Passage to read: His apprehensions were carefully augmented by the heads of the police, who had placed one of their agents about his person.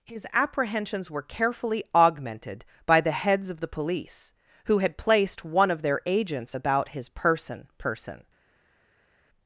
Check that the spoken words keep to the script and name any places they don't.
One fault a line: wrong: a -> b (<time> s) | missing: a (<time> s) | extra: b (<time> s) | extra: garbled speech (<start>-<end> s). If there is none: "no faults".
extra: person (7.8 s)